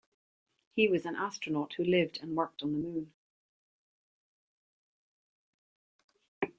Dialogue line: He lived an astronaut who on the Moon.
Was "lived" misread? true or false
true